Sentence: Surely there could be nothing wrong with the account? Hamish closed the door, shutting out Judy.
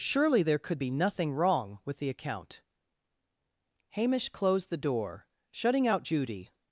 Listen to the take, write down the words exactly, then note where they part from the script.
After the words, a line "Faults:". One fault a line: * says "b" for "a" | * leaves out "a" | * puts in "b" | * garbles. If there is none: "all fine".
Surely there could be nothing wrong with the account? Hamish closed the door, shutting out Judy.
Faults:
all fine